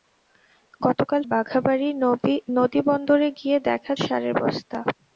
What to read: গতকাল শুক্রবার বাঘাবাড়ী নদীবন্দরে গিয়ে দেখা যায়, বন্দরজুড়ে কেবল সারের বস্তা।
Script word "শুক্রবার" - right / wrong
wrong